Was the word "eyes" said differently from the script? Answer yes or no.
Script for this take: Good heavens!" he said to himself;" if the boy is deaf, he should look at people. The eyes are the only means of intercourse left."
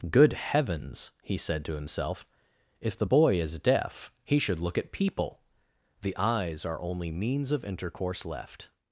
no